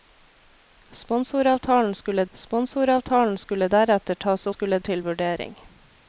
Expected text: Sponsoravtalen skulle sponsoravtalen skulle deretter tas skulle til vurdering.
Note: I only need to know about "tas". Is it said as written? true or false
true